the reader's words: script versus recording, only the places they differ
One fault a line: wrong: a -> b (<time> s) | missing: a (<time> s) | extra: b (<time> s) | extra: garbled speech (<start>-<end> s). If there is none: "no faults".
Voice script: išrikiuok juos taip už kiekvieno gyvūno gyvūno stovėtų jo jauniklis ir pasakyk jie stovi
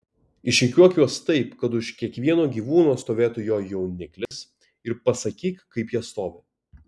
extra: kad (1.6 s)
missing: gyvūno (3.0 s)
extra: kaip (5.8 s)